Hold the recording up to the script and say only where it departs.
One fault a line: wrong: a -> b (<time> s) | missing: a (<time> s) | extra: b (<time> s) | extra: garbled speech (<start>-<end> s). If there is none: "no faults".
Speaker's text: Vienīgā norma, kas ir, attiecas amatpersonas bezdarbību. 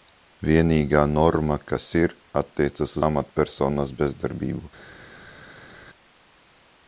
no faults